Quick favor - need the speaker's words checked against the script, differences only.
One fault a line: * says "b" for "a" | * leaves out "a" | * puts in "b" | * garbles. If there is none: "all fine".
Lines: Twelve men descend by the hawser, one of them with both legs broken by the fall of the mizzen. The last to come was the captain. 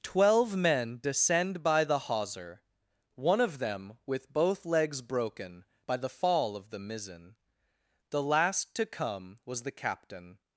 all fine